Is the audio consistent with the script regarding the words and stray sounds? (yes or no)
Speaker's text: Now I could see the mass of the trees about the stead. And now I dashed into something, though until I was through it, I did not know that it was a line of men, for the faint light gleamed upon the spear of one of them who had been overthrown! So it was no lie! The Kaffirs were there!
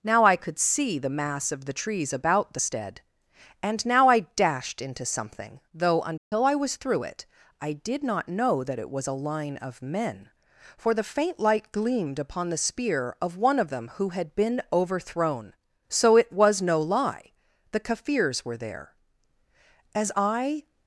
no